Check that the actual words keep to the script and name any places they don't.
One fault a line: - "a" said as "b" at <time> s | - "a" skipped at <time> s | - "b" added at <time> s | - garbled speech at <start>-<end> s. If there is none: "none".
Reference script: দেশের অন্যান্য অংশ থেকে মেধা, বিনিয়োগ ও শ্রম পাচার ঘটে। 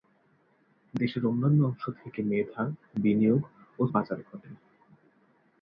- "শ্রম" skipped at 3.9 s